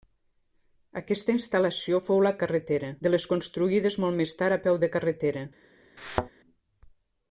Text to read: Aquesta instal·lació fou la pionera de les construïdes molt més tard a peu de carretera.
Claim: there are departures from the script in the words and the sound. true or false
true